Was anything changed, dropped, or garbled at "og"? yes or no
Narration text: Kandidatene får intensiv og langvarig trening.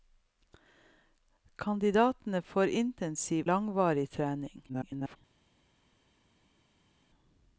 yes